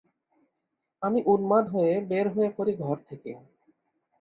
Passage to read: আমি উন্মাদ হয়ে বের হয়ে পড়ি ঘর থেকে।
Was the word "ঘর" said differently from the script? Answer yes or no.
no